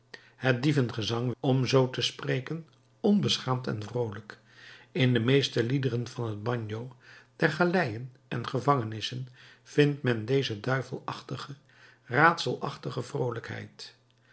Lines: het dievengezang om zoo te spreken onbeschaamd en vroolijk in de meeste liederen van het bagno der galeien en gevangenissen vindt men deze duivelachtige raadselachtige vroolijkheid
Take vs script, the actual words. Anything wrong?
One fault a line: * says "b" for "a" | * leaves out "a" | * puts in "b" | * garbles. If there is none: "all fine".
all fine